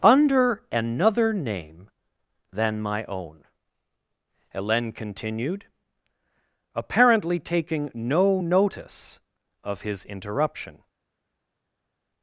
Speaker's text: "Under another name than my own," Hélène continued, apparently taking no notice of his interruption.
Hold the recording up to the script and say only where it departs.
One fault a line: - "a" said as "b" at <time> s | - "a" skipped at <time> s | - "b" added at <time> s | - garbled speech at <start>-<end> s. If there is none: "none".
none